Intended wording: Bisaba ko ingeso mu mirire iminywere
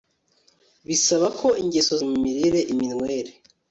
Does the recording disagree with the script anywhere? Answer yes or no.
no